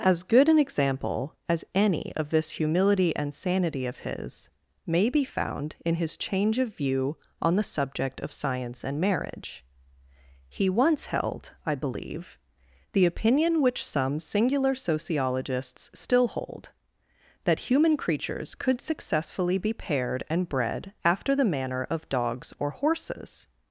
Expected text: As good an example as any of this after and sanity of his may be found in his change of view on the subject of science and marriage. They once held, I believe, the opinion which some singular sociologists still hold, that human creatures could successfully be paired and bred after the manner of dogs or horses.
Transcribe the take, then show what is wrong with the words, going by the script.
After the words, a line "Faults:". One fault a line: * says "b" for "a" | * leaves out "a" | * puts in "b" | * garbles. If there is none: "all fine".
As good an example as any of this humility and sanity of his may be found in his change of view on the subject of science and marriage. He once held, I believe, the opinion which some singular sociologists still hold, that human creatures could successfully be paired and bred after the manner of dogs or horses.
Faults:
* says "humility" for "after"
* says "He" for "They"